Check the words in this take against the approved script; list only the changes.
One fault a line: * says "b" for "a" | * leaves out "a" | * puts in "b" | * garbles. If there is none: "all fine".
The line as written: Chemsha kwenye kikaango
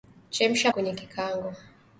all fine